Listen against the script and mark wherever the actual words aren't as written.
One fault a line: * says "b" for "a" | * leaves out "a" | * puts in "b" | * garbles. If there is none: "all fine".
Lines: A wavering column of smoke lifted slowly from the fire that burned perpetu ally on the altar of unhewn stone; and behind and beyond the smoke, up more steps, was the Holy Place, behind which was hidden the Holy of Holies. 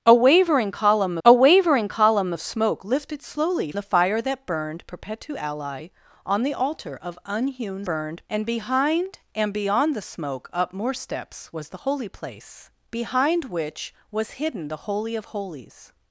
* puts in "a wavering column"
* leaves out "from"
* says "burned" for "stone"